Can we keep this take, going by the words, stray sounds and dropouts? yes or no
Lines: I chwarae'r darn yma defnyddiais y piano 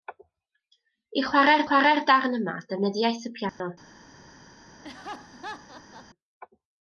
no